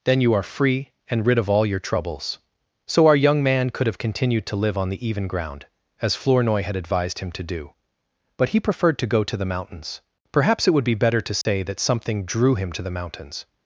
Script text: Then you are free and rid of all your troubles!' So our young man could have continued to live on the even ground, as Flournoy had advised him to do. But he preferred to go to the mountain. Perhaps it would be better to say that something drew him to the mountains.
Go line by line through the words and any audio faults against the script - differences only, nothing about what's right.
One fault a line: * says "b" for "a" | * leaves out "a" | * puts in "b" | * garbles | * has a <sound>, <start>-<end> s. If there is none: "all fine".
* says "mountains" for "mountain"
* has a dropout, 11.4-11.5 s